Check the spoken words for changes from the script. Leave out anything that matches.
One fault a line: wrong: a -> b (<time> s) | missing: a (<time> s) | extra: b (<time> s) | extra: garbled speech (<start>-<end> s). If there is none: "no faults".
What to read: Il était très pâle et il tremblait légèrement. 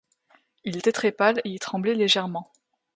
no faults